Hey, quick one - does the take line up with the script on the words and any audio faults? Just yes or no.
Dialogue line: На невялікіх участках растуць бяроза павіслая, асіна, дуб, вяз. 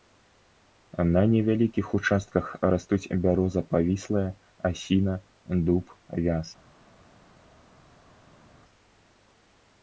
yes